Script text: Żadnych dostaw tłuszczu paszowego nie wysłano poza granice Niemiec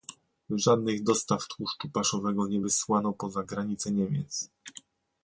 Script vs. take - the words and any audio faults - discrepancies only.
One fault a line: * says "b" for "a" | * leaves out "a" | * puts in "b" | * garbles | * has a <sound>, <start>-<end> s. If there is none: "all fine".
all fine